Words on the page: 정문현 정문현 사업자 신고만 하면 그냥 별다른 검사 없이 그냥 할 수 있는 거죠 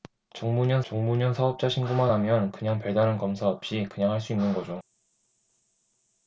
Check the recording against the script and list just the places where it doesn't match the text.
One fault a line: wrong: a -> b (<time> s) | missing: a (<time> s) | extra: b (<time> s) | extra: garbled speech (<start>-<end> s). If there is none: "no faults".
no faults